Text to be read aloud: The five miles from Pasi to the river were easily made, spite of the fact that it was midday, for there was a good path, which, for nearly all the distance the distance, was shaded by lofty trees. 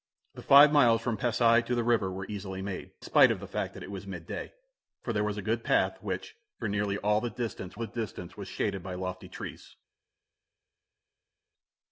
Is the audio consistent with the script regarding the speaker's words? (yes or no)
yes